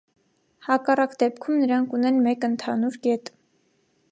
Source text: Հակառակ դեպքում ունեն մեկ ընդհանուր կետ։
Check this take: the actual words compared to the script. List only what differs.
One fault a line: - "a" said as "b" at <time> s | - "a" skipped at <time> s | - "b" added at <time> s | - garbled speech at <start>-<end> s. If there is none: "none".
- "նրանք" added at 1.6 s